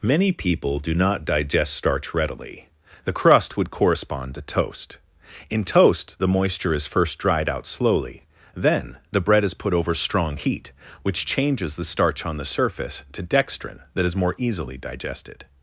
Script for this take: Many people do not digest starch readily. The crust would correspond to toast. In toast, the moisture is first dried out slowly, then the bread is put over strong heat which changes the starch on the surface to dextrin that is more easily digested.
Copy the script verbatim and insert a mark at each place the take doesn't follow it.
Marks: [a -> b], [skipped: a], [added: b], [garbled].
Many people do not digest starch readily. The crust would correspond to toast. In toast, the moisture is first dried out slowly, then the bread is put over strong heat which changes the starch on the surface to dextrin that is more easily digested.